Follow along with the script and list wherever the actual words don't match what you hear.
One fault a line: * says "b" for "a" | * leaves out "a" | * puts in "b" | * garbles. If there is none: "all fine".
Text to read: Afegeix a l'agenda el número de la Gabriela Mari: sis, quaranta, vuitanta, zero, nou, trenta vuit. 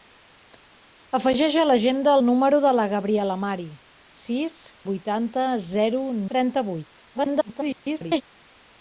* leaves out "quaranta"
* leaves out "nou"
* garbles